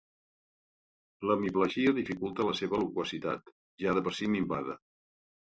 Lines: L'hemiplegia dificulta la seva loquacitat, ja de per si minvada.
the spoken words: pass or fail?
pass